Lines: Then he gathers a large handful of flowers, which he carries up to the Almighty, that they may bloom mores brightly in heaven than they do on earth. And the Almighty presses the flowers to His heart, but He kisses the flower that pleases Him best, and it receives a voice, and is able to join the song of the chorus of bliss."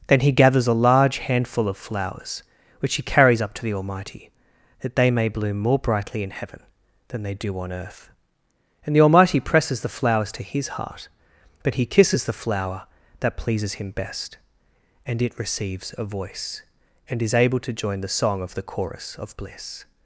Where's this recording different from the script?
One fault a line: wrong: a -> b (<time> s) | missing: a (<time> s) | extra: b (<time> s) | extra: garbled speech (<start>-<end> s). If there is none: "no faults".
wrong: mores -> more (5.6 s)